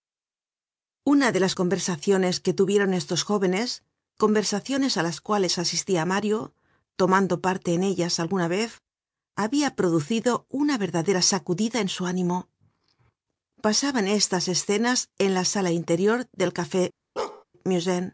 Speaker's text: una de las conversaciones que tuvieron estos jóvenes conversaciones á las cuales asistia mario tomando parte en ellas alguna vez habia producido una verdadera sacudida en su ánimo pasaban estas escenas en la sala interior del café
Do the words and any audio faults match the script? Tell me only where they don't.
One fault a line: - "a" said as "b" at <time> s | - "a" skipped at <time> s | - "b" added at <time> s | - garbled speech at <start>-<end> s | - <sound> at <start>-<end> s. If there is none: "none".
- bark at 17.2-17.4 s